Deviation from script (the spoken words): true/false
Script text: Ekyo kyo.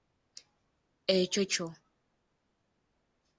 false